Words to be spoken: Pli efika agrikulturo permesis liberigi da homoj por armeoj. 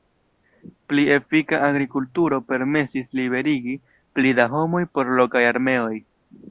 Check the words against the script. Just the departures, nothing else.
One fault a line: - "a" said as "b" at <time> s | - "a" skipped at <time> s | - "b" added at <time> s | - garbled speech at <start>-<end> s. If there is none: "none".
- "pli" added at 4.2 s
- "lokaj" added at 5.2 s